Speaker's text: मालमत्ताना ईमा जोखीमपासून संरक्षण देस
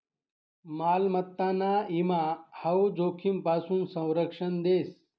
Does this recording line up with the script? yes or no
no